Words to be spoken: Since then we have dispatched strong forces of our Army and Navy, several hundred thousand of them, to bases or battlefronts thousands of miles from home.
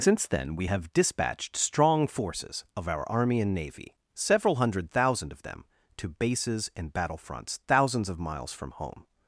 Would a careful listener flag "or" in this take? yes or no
yes